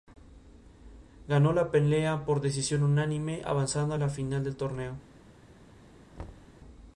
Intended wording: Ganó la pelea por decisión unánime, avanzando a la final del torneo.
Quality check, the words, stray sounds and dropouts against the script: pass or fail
fail